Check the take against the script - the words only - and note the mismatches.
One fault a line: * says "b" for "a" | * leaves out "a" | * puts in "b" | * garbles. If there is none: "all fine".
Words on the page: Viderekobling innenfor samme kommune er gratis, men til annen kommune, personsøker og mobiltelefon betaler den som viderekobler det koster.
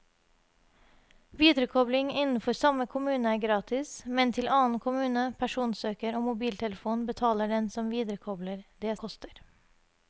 all fine